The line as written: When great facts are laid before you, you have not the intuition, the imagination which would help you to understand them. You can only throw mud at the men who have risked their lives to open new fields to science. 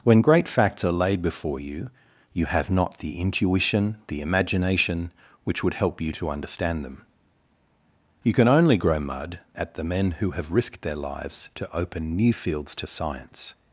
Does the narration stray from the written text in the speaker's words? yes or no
yes